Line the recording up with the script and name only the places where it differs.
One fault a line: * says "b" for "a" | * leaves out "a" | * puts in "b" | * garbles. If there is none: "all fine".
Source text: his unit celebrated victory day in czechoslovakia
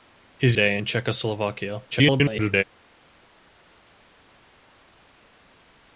* leaves out "unit celebrated victory"
* garbles